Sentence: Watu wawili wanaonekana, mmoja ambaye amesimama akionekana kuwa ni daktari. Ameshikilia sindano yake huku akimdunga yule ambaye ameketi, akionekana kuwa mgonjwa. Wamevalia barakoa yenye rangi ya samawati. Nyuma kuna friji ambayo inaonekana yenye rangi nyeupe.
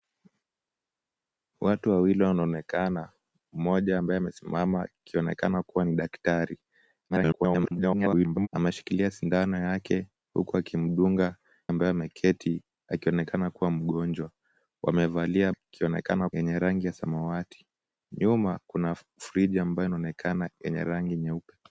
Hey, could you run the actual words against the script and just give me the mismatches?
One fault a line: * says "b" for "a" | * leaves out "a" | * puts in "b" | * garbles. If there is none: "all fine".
* garbles
* leaves out "yule"
* says "akionekana" for "barakoa"